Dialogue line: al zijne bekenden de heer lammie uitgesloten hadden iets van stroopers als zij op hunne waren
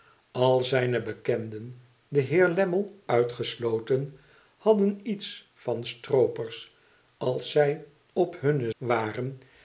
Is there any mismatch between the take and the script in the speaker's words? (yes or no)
no